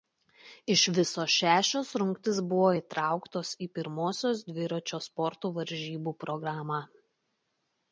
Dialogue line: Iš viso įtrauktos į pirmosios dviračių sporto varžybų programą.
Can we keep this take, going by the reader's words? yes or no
no